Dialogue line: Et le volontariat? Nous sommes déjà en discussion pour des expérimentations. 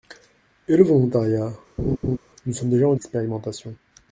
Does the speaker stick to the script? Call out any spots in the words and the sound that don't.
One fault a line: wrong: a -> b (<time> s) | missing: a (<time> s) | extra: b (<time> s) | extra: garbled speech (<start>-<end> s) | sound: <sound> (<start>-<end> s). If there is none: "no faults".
sound: laugh (1.8-2.2 s)
missing: discussion pour des (2.9 s)